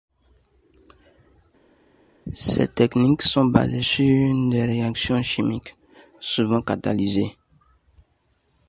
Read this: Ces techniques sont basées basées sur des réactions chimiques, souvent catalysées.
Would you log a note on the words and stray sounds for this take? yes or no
yes